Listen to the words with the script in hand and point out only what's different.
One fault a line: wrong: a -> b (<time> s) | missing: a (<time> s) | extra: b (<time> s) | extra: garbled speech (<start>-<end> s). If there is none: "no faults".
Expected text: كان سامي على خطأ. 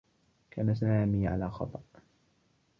no faults